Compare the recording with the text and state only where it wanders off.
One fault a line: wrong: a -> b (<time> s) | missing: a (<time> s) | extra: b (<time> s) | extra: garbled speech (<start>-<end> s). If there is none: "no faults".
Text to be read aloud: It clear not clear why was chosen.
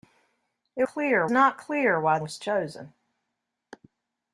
no faults